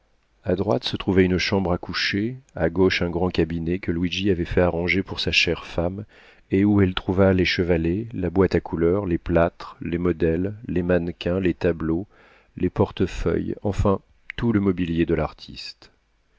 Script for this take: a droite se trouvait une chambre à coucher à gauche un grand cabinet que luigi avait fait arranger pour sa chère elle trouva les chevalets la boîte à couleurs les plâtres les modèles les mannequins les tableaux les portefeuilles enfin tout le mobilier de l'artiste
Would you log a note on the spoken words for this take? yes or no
yes